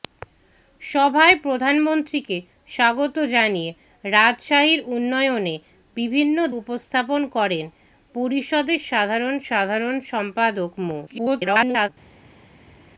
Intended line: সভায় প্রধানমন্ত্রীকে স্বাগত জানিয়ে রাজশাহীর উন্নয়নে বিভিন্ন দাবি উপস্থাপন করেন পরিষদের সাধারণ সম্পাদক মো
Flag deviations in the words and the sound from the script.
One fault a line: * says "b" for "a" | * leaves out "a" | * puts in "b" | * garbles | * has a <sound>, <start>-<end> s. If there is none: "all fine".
* leaves out "দাবি"
* puts in "সাধারণ"
* garbles